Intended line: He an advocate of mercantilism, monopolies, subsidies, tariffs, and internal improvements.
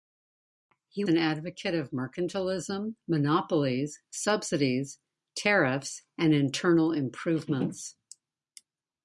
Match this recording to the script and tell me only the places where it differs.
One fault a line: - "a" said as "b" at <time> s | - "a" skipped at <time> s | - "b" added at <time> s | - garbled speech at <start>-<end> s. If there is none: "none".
none